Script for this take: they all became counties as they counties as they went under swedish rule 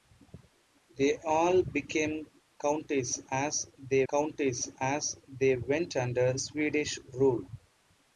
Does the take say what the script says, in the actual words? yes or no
yes